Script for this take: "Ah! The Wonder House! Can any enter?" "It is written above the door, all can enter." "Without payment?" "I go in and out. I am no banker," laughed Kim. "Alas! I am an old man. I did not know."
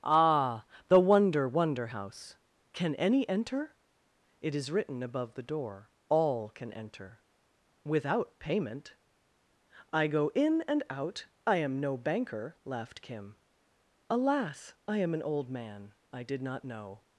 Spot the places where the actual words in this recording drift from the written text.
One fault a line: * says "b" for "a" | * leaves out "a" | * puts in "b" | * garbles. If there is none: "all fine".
* puts in "Wonder"